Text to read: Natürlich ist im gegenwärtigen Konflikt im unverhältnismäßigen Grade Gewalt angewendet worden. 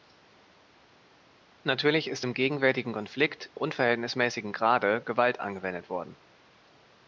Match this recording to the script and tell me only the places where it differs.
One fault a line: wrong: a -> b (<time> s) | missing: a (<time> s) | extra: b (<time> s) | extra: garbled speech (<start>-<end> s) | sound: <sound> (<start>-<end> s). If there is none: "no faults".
missing: im (3.5 s)